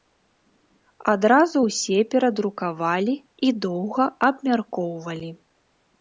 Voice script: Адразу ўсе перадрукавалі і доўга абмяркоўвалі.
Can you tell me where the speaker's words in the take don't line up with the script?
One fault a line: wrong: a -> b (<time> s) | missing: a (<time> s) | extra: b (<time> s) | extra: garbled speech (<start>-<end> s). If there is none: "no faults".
no faults